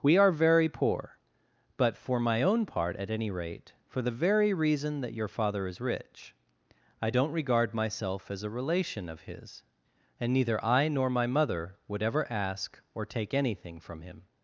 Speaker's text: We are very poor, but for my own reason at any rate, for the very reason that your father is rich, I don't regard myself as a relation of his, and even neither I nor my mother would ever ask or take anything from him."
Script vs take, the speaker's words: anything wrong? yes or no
yes